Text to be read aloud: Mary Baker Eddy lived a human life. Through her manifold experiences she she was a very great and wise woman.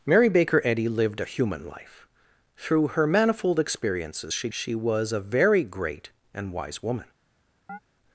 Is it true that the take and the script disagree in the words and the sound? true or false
true